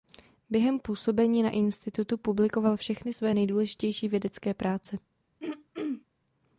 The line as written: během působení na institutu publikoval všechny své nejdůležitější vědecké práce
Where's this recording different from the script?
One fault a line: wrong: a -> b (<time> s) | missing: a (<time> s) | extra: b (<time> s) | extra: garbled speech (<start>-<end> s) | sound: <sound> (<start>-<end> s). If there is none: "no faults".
sound: throat clearing (5.4-6.1 s)